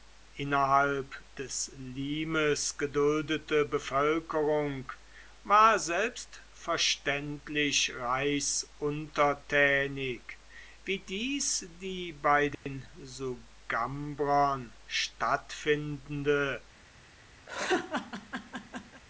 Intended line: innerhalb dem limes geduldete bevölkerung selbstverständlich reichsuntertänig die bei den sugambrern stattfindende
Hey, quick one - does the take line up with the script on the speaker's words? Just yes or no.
no